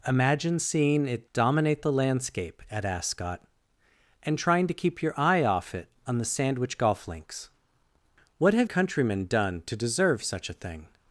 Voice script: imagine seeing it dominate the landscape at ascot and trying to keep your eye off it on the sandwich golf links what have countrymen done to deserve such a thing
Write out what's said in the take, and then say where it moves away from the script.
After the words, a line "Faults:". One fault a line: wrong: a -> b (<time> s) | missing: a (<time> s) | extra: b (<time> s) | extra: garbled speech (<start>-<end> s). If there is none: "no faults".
imagine seeing it dominate the landscape at ascot and trying to keep your eye off it on the sandwich golf links what have countrymen done to deserve such a thing
Faults:
no faults